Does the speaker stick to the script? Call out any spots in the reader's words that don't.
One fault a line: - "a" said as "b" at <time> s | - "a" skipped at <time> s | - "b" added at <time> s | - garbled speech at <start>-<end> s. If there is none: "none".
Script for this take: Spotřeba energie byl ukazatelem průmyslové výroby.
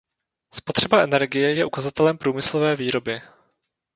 - "byl" said as "je" at 1.5 s